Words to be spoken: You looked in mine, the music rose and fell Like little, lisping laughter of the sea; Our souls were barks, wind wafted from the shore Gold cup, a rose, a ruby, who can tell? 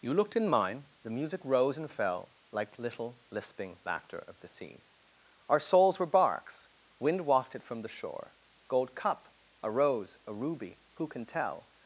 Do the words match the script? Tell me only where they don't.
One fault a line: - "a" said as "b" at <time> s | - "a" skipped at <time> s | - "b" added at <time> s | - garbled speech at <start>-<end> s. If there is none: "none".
none